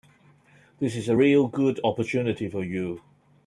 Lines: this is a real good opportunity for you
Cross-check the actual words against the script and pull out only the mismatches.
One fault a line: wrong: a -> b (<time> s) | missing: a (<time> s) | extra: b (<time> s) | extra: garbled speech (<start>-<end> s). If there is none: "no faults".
no faults